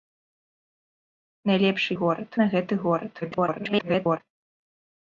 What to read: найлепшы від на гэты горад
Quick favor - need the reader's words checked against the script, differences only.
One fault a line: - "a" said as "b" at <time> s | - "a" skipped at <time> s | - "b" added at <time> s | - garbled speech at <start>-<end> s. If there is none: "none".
- "від" said as "горад" at 2.0 s
- garbled speech at 3.2-4.2 s